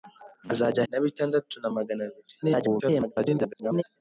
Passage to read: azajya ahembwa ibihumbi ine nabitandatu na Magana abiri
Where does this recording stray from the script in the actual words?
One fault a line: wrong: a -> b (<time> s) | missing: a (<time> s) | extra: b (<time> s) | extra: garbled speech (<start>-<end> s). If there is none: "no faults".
missing: ahembwa ibihumbi ine (0.8 s)
extra: garbled speech (2.4-3.8 s)